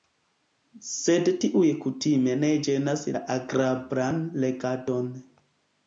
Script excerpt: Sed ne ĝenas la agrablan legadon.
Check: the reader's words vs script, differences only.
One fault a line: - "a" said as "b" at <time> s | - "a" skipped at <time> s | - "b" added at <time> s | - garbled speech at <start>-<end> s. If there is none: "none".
- "tiuj kutime" added at 1.4 s